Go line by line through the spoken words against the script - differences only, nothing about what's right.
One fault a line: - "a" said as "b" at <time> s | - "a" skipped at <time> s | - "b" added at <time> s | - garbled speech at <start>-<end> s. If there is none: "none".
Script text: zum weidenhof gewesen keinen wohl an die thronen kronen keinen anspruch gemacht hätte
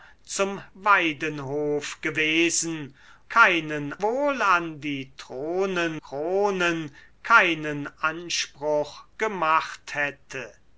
none